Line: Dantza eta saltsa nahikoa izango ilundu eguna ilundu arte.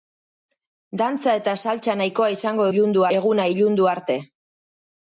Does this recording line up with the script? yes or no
yes